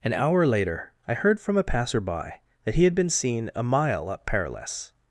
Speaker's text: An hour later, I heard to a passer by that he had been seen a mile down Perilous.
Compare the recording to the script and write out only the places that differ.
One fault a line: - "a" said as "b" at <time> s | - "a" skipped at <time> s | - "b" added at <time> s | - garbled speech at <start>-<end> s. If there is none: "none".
- "to" said as "from" at 1.4 s
- "down" said as "up" at 4.1 s